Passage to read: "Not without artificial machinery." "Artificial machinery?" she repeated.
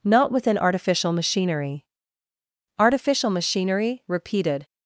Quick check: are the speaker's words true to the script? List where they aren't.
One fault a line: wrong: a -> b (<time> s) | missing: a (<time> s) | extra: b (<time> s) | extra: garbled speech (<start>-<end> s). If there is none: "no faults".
wrong: without -> within (0.3 s)
missing: she (4.0 s)